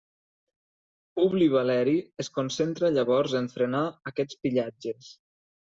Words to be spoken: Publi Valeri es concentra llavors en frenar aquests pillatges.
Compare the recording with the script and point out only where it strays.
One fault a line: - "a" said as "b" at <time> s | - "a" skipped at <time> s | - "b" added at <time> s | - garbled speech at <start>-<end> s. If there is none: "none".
none